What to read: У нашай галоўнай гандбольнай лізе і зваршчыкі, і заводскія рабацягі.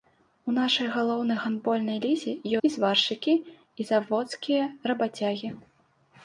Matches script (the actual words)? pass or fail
pass